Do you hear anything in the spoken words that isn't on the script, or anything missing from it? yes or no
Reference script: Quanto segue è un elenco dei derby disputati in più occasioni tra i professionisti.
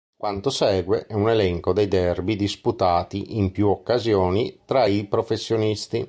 no